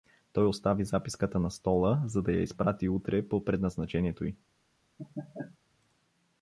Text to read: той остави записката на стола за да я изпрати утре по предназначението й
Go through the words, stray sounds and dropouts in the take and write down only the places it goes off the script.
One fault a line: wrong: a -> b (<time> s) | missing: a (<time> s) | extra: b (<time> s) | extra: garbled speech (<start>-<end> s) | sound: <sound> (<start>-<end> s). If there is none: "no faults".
sound: laugh (5.0-5.6 s)